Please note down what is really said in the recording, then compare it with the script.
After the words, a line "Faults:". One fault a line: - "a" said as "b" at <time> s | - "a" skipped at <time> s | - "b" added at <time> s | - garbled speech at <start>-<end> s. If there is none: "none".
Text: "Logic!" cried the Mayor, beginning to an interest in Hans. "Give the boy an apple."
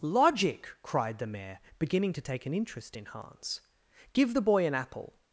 "Logic!" cried the Mayor, beginning to take an interest in Hans. "Give the boy an apple."
Faults:
- "take" added at 2.2 s